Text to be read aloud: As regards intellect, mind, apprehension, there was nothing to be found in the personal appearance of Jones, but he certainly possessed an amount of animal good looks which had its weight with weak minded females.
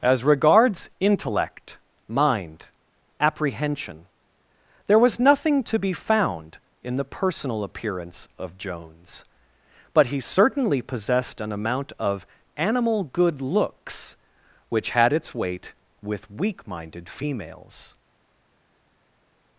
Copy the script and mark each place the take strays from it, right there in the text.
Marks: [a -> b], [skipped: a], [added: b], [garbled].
As regards intellect, mind, apprehension, there was nothing to be found in the personal appearance of Jones, but he certainly possessed an amount of animal good looks which had its weight with weak minded females.